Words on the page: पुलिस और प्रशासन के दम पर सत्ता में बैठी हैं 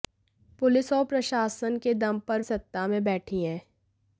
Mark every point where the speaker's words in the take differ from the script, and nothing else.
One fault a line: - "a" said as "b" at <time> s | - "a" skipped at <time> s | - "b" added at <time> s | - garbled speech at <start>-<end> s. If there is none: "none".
none